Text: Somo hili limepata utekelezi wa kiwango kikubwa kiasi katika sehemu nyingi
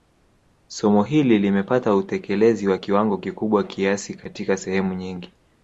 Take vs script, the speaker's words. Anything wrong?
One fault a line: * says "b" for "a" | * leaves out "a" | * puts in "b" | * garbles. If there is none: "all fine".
all fine